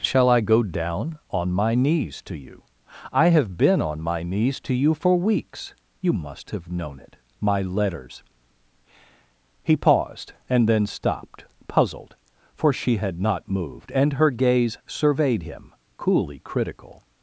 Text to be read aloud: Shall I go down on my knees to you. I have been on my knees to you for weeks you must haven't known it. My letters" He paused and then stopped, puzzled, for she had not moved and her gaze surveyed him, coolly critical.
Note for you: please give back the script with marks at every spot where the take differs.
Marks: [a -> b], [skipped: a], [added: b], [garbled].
Shall I go down on my knees to you. I have been on my knees to you for weeks you must [haven't -> have] known it. My letters" He paused and then stopped, puzzled, for she had not moved and her gaze surveyed him, coolly critical.